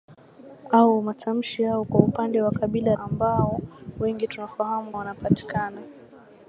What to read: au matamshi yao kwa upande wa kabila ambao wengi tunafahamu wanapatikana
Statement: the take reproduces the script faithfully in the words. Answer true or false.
true